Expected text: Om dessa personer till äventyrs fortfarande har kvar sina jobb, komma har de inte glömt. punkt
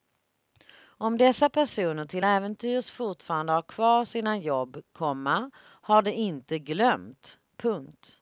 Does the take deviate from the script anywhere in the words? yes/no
no